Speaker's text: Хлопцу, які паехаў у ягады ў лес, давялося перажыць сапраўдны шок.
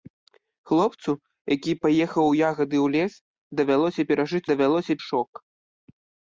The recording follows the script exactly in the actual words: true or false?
false